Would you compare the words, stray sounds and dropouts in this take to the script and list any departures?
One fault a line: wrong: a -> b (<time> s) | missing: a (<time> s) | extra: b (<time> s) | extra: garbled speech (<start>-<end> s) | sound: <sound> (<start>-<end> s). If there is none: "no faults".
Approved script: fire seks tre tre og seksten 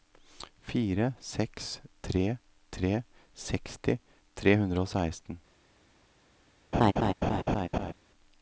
extra: seksti tre hundre (3.5 s)
sound: laugh (6.7-7.9 s)